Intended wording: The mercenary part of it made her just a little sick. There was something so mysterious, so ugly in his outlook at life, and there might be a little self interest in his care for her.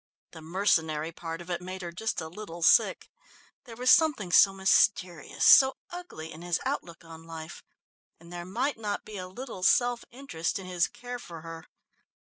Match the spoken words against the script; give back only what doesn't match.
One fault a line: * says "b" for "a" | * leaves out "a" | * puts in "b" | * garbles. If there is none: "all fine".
* says "on" for "at"
* puts in "not"